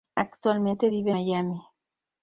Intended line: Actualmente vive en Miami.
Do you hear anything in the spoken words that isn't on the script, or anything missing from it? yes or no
yes